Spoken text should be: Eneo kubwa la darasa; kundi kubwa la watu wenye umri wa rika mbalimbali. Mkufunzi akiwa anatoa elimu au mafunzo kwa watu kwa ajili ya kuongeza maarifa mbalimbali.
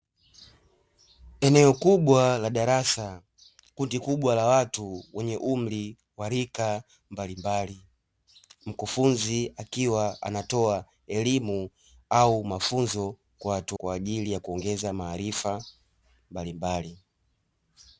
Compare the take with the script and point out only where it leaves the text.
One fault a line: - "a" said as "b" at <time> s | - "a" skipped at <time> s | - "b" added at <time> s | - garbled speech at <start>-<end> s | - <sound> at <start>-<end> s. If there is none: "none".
none